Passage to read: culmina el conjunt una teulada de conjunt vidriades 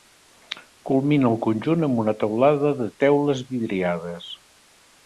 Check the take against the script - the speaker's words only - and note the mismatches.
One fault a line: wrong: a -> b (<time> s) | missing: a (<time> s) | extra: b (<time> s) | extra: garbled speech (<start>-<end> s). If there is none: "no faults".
extra: amb (1.9 s)
wrong: conjunt -> teules (3.0 s)